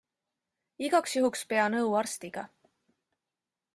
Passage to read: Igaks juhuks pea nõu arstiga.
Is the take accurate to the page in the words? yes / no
yes